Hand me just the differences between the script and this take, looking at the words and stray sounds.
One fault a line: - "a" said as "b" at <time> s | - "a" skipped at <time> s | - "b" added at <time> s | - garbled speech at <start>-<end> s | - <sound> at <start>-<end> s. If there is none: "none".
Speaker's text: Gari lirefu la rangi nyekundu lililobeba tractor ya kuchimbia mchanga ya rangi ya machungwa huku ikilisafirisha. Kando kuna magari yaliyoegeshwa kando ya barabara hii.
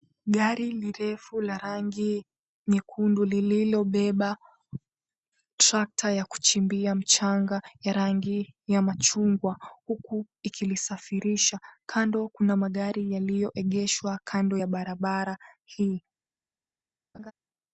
- laugh at 17.1-17.3 s